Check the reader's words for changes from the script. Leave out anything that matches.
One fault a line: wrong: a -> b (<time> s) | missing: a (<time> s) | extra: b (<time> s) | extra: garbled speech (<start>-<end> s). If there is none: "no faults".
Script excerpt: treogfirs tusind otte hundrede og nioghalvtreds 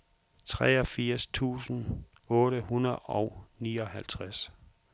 no faults